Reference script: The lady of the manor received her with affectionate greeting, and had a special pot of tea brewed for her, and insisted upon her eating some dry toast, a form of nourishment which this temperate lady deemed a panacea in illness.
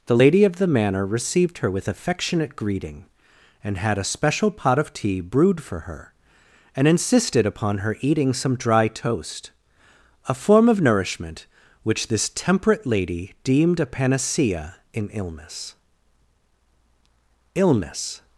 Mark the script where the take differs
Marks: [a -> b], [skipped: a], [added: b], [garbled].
The lady of the manor received her with affectionate greeting, and had a special pot of tea brewed for her, and insisted upon her eating some dry toast, a form of nourishment which this temperate lady deemed a panacea in illness. [added: illness]